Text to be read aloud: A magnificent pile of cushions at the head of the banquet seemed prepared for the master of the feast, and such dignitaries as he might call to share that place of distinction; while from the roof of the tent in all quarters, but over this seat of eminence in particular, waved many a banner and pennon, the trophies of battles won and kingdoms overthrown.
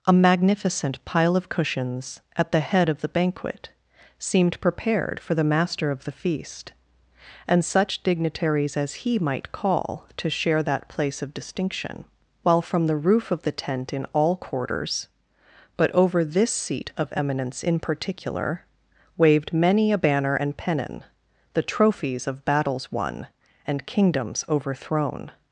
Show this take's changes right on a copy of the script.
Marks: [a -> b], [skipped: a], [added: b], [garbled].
A magnificent pile of cushions at the head of the banquet seemed prepared for the master of the feast, and such dignitaries as he might call to share that place of distinction; while from the roof of the tent in all quarters, but over this seat of eminence in particular, waved many a banner and pennon, the trophies of battles won and kingdoms overthrown.